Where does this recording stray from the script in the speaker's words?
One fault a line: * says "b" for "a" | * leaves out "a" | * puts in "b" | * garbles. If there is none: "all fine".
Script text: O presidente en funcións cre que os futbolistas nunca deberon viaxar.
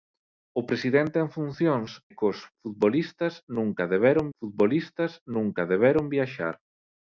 * leaves out "cre"
* puts in "futbolistas nunca deberon"